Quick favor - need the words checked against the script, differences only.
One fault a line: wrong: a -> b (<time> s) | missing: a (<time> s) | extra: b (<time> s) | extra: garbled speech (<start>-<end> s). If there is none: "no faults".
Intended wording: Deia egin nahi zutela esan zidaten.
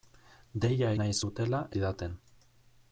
missing: egin (0.9 s)
missing: esan (1.6 s)